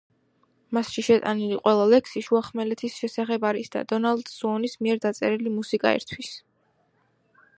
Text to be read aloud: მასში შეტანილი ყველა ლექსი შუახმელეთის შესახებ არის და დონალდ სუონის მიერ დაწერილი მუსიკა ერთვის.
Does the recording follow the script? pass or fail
pass